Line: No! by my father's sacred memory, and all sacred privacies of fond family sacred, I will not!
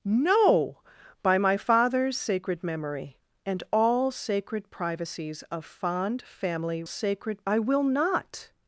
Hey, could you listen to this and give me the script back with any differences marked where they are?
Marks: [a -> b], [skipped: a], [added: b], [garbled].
No! by my father's sacred memory, and all sacred privacies of fond family sacred, I will not!